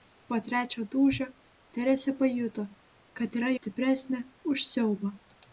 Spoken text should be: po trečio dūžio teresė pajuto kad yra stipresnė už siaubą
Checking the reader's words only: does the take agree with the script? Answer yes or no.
yes